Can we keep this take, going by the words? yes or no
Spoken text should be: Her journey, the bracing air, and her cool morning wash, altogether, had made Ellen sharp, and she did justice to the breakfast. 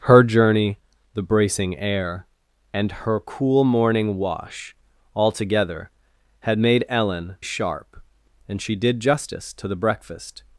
yes